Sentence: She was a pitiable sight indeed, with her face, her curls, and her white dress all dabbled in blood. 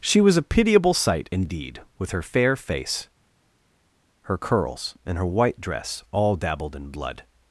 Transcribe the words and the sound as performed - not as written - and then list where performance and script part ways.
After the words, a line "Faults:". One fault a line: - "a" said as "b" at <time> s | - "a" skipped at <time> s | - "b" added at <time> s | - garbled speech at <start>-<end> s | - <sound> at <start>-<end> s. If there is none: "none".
She was a pitiable sight indeed, with her fair face, her curls, and her white dress all dabbled in blood.
Faults:
- "fair" added at 2.2 s